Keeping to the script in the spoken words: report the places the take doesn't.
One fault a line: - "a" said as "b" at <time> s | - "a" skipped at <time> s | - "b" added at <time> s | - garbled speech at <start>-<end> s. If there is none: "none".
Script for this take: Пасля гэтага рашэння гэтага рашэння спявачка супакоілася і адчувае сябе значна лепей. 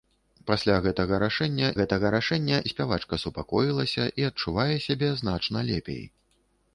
none